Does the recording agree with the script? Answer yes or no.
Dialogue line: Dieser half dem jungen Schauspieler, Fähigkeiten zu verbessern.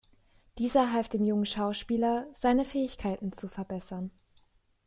no